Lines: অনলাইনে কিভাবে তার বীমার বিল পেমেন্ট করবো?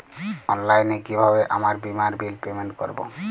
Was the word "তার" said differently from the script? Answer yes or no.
yes